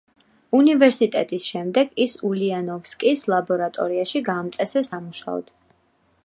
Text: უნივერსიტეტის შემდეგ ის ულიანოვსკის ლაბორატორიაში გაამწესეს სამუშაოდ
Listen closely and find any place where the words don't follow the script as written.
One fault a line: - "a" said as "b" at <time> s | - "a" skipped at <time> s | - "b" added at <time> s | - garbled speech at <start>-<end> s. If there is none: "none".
none